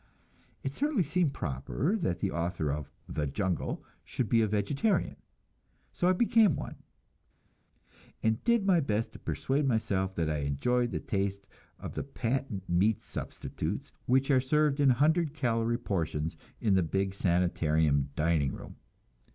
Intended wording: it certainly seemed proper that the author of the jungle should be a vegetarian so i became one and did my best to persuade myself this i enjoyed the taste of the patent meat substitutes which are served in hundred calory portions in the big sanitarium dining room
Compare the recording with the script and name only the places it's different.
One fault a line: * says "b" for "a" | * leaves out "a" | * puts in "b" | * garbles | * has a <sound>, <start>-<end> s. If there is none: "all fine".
* says "that" for "this"